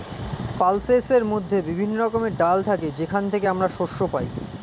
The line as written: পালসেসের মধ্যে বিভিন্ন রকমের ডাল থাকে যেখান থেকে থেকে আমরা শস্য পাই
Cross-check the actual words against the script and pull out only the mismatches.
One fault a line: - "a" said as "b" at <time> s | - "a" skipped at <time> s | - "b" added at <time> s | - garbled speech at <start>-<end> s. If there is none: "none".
- "থেকে" skipped at 3.5 s